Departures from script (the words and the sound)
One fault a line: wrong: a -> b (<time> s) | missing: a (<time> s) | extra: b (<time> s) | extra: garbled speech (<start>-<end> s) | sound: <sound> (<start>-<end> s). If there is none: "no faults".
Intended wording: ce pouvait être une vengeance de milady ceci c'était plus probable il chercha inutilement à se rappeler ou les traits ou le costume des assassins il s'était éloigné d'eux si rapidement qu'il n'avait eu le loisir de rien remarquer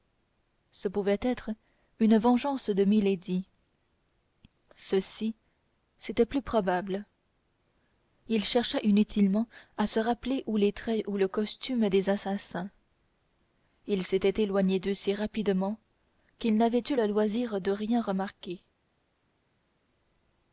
no faults